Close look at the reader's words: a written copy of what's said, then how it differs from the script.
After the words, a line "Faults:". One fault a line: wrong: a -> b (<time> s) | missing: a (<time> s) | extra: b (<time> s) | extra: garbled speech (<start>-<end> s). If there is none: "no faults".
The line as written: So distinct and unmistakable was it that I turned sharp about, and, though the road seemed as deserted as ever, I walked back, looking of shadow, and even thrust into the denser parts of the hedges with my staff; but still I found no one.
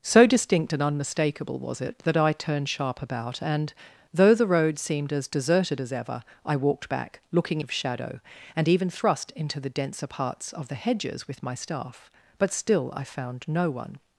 So distinct and unmistakable was it that I turned sharp about, and, though the road seemed as deserted as ever, I walked back, looking of shadow, and even thrust into the denser parts of the hedges with my staff; but still I found no one.
Faults:
no faults